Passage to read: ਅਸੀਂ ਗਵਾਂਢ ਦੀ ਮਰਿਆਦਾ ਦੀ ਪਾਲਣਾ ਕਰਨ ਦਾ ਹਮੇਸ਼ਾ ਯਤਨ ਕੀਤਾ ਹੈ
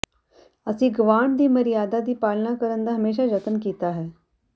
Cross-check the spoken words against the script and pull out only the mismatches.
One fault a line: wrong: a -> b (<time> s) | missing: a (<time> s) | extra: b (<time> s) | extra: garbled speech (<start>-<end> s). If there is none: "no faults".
no faults